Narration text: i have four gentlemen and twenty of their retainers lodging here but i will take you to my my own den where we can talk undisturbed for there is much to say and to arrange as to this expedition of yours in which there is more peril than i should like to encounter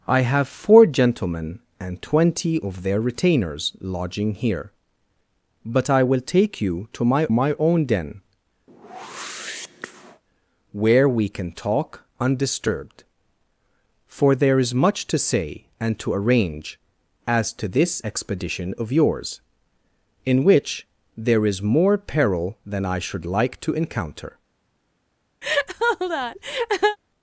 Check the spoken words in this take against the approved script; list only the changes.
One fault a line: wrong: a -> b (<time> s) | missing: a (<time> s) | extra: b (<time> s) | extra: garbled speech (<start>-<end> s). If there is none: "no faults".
no faults